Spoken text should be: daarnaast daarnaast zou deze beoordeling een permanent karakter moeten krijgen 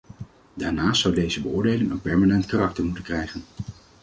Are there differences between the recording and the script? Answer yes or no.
yes